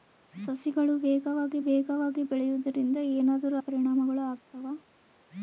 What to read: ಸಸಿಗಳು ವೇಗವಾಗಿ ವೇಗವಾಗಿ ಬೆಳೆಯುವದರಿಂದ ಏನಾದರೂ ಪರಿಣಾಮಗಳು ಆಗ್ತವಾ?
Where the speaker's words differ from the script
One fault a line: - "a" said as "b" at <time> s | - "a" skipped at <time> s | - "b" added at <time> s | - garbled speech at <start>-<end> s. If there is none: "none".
none